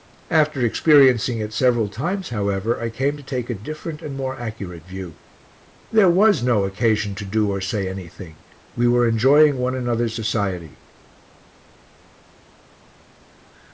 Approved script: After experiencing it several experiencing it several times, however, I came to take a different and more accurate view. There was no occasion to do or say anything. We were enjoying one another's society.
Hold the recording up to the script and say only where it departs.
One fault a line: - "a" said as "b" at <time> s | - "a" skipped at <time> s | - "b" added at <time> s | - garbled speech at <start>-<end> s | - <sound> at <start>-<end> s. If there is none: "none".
- "experiencing it several" skipped at 1.9 s